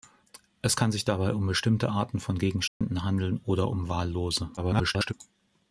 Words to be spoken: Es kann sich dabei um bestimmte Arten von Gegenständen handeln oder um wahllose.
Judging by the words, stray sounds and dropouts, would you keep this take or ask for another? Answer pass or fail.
fail